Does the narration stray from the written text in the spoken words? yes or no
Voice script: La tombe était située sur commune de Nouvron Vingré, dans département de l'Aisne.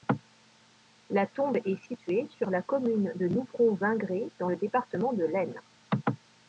yes